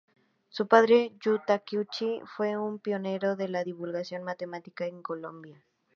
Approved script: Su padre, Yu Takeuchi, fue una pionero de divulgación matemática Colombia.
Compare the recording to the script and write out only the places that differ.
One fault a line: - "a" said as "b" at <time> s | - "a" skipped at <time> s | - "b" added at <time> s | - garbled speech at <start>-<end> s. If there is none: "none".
- "una" said as "un" at 2.6 s
- "la" added at 3.5 s
- "en" added at 4.9 s